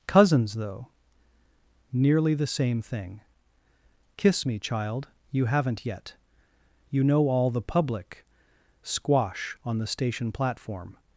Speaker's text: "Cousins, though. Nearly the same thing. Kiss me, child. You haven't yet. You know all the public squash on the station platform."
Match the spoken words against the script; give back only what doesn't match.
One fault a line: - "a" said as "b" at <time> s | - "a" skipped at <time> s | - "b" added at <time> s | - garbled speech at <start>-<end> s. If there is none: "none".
none